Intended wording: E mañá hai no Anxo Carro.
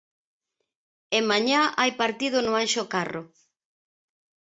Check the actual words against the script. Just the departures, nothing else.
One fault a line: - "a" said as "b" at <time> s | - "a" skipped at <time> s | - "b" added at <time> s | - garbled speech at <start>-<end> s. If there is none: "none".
- "partido" added at 2.0 s